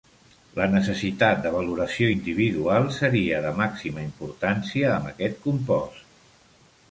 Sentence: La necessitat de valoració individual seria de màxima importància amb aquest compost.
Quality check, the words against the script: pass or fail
pass